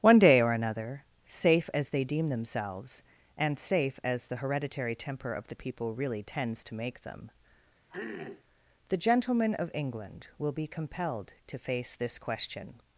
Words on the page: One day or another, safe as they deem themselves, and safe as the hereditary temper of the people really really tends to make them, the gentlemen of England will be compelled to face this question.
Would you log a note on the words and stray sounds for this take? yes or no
yes